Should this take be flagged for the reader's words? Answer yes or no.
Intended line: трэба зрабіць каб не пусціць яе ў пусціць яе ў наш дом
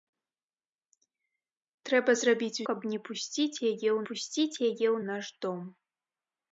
no